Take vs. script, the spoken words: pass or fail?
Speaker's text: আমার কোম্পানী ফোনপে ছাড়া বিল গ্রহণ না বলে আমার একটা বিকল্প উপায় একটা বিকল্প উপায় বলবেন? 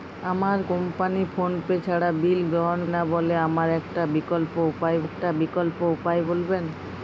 pass